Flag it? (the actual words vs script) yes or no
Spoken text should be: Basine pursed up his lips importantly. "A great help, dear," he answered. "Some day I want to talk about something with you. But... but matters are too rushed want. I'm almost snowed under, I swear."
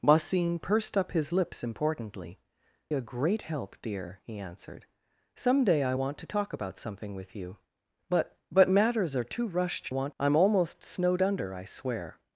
no